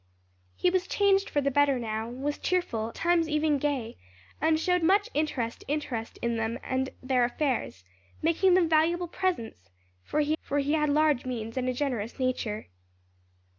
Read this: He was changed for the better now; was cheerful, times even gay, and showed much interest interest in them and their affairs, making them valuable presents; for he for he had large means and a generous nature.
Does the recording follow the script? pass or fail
pass